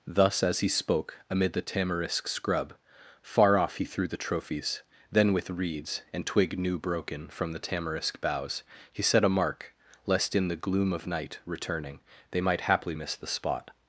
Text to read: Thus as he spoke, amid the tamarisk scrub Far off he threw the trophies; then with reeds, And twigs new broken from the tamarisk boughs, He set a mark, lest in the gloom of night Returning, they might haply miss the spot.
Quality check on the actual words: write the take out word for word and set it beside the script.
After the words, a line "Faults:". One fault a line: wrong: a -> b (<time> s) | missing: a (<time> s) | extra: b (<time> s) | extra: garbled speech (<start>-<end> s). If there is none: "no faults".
Thus as he spoke, amid the tamarisk scrub Far off he threw the trophies; then with reeds, And twig new broken from the tamarisk boughs, He set a mark, lest in the gloom of night Returning, they might haply miss the spot.
Faults:
wrong: twigs -> twig (6.2 s)